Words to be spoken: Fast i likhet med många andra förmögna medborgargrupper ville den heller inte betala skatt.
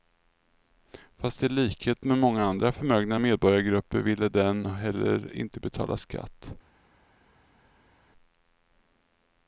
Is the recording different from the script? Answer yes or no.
no